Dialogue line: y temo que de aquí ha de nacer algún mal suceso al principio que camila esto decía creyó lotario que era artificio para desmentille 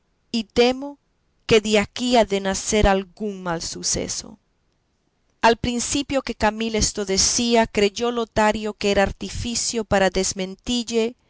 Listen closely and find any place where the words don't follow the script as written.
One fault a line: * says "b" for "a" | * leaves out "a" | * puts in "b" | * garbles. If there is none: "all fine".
all fine